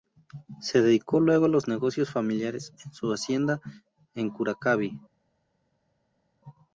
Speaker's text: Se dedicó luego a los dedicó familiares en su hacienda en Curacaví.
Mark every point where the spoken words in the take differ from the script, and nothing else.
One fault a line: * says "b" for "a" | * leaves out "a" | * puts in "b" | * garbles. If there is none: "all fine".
* says "negocios" for "dedicó"